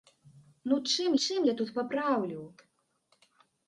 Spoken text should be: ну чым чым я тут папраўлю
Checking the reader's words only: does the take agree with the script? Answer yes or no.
yes